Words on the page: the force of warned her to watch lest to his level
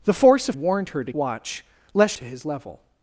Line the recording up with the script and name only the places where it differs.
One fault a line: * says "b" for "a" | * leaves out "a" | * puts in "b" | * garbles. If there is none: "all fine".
all fine